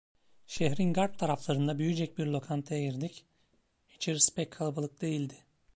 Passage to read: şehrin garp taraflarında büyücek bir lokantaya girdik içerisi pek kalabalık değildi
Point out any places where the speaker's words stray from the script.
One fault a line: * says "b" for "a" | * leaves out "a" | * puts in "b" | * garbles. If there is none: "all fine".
all fine